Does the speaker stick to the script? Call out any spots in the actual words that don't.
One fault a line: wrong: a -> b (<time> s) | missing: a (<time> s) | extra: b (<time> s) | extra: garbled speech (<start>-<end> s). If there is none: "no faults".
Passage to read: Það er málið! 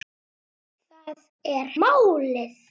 no faults